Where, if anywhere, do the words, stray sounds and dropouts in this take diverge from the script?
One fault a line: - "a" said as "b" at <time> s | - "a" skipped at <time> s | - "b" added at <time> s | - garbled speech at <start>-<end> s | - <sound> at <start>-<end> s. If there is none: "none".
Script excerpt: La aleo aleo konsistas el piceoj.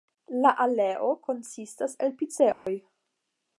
- "aleo" skipped at 1.1 s
- dropout at 2.5-2.7 s